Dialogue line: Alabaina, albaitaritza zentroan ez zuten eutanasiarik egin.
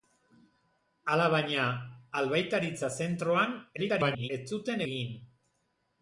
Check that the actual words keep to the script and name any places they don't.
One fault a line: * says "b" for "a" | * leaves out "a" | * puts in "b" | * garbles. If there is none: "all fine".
* garbles
* leaves out "eutanasiarik"